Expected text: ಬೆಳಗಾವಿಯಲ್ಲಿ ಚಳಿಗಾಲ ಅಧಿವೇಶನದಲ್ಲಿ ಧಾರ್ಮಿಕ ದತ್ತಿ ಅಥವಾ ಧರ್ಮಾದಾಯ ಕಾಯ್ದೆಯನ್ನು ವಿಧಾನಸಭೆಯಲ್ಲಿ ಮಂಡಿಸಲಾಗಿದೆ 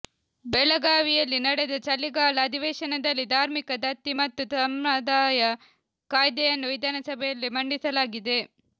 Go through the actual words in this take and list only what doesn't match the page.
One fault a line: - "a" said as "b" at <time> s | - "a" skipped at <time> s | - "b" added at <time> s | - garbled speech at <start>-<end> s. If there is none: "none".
- "ನಡೆದ" added at 1.4 s
- "ಅಥವಾ" said as "ಮತ್ತು" at 4.2 s